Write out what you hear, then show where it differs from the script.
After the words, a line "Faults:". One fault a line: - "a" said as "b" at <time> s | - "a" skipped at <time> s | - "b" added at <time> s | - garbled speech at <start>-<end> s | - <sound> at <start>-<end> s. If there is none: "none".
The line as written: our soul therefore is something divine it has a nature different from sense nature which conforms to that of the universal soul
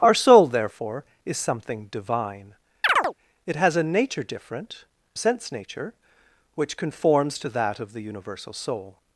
our soul therefore is something divine it has a nature different sense nature which conforms to that of the universal soul
Faults:
- chirp at 2.8-3.1 s
- "from" skipped at 4.8 s